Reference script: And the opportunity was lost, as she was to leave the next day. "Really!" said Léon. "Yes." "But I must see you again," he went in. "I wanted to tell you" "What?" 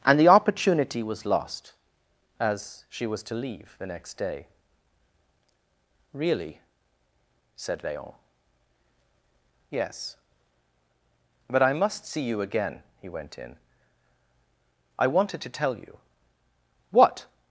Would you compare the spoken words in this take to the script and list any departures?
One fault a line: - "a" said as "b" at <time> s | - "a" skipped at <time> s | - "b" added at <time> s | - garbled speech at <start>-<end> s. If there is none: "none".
none